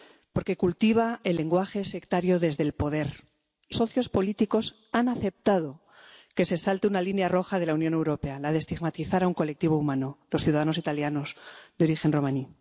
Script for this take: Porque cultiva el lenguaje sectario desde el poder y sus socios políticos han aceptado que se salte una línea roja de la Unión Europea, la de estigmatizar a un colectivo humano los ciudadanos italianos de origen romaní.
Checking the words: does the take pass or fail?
fail